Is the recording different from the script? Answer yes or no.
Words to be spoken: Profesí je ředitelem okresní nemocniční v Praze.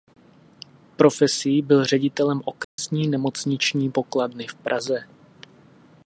yes